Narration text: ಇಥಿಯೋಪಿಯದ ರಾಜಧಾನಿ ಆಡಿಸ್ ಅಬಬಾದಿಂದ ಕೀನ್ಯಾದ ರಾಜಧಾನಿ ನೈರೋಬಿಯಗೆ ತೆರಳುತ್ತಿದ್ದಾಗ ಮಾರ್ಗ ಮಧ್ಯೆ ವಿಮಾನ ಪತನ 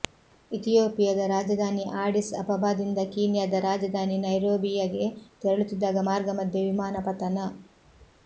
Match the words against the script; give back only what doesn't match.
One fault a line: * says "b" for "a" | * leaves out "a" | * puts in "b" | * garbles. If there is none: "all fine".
all fine